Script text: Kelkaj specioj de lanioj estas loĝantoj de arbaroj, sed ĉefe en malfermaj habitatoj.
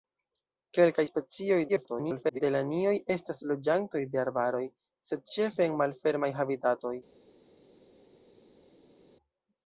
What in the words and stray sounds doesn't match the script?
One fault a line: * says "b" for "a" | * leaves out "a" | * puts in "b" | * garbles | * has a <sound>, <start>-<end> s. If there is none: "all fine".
* garbles